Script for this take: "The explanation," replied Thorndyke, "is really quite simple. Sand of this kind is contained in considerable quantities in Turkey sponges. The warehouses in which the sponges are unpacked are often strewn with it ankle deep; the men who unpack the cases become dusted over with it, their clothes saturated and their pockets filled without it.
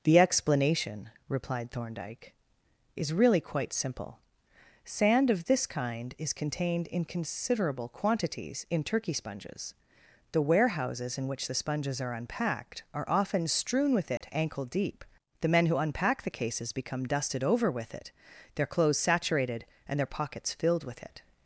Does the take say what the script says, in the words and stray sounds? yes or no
no